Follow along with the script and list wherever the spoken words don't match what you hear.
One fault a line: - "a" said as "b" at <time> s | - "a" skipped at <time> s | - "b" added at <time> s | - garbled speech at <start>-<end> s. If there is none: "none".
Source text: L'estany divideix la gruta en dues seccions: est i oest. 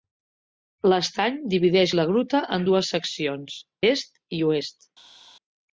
none